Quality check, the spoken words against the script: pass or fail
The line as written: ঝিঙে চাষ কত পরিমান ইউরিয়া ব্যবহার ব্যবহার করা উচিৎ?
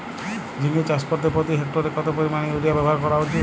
fail